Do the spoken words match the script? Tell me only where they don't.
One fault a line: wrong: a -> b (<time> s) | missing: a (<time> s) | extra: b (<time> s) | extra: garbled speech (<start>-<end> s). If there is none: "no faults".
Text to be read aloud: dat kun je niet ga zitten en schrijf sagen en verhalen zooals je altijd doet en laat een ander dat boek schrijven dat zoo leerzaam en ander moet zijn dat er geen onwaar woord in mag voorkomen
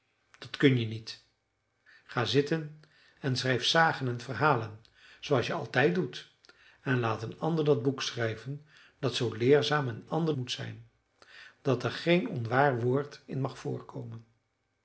no faults